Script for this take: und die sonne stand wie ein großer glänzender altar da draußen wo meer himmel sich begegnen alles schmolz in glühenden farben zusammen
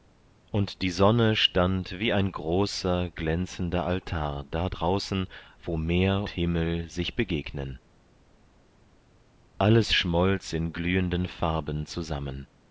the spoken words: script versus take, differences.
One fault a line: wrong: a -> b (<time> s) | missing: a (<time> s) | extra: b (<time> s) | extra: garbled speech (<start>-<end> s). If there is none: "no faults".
no faults